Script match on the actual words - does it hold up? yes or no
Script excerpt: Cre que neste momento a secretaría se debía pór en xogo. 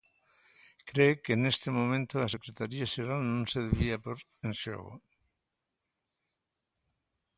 no